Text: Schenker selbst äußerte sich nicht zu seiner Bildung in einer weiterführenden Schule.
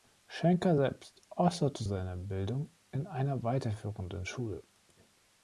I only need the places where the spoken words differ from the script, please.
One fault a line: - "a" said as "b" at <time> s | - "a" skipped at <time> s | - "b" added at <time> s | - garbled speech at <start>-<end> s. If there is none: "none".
- "sich nicht zu" skipped at 1.8 s